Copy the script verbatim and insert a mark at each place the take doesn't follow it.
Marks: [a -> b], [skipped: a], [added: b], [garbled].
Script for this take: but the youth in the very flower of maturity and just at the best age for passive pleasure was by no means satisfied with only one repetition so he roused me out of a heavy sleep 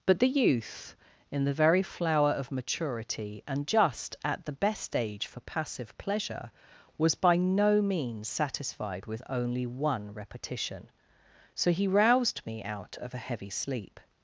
but the youth in the very flower of maturity and just at the best age for passive pleasure was by no means satisfied with only one repetition so he roused me out of a heavy sleep